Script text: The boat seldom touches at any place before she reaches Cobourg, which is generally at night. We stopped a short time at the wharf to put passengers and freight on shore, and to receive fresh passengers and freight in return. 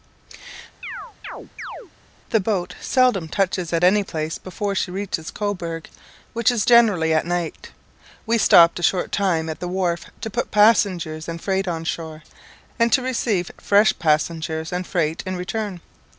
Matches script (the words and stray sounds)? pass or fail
fail